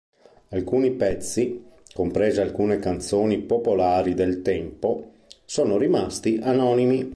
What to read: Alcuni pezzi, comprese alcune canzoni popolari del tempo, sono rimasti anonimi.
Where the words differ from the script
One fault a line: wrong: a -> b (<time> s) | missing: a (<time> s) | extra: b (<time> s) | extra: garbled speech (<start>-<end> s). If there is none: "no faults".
no faults